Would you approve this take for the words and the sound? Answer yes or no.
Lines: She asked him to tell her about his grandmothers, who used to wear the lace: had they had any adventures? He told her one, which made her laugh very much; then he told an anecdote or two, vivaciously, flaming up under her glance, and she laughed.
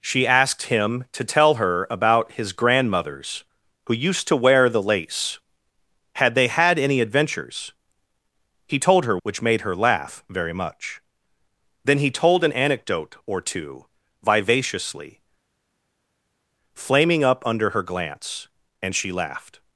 no